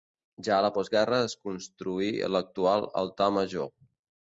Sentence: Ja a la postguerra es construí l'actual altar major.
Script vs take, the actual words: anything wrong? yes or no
no